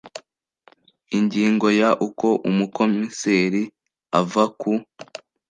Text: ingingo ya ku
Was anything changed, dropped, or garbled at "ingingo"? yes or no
no